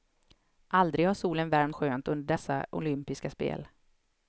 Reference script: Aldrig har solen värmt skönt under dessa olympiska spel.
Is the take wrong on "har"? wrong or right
right